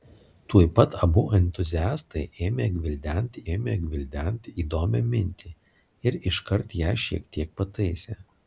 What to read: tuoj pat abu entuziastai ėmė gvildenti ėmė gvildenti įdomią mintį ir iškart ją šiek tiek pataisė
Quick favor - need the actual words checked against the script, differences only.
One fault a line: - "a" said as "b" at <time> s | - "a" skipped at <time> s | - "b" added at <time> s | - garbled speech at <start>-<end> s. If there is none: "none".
none